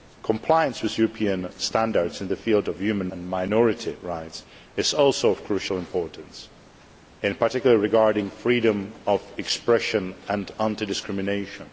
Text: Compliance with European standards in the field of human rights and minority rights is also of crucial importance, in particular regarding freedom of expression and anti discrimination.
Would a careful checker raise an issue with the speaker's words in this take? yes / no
yes